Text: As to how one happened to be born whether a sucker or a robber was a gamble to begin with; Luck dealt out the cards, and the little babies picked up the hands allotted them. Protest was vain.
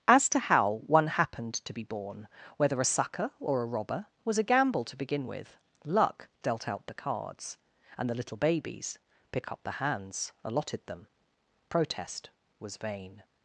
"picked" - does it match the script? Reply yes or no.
no